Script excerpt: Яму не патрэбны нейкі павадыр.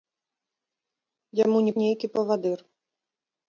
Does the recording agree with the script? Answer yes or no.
no